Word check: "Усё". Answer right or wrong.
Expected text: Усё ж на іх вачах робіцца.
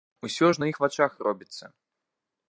right